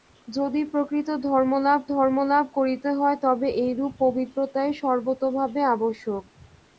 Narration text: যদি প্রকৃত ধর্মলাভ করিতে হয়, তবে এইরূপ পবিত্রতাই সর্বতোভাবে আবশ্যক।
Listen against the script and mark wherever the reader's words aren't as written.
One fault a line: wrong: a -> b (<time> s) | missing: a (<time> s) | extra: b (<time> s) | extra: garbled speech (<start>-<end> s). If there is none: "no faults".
extra: ধর্মলাভ (1.9 s)